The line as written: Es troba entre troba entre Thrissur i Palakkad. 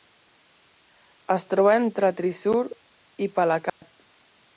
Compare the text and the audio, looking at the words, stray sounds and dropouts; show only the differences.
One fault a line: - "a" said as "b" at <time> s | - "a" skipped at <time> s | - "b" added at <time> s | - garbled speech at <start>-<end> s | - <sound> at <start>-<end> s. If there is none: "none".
- "troba entre" skipped at 2.1 s
- dropout at 3.7-3.8 s